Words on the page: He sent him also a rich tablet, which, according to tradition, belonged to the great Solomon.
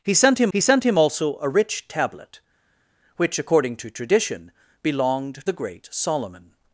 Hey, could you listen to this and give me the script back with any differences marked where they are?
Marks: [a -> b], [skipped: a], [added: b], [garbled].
He sent him [added: he sent him] also a rich tablet, which, according to tradition, belonged [skipped: to] the great Solomon.